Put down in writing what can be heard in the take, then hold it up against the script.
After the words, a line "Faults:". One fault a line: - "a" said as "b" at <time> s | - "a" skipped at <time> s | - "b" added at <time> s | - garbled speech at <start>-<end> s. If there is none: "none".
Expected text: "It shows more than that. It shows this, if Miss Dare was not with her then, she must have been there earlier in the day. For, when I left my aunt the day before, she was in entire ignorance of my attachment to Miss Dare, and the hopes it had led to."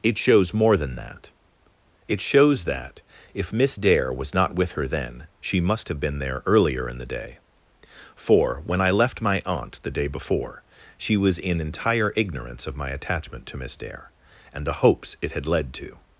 "It shows more than that. It shows that, if Miss Dare was not with her then, she must have been there earlier in the day. For, when I left my aunt the day before, she was in entire ignorance of my attachment to Miss Dare, and the hopes it had led to."
Faults:
- "this" said as "that" at 2.6 s